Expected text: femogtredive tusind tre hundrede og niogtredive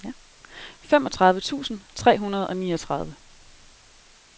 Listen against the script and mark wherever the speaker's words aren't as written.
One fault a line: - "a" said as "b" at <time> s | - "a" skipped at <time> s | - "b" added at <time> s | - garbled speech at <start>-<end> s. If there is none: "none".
none